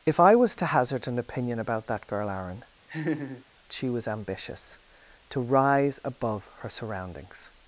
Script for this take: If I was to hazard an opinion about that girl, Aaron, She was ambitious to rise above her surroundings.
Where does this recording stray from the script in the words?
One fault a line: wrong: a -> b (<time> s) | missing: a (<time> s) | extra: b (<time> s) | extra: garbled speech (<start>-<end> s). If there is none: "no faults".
no faults